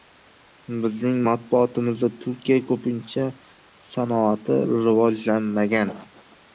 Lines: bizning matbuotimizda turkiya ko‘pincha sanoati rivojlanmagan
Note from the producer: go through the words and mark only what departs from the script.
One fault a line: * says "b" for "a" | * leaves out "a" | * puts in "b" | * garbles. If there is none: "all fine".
all fine